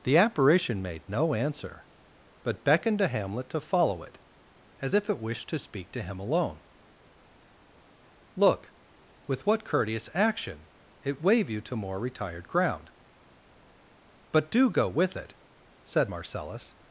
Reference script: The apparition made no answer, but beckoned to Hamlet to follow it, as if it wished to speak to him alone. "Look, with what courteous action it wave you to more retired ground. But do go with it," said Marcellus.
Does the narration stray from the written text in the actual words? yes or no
no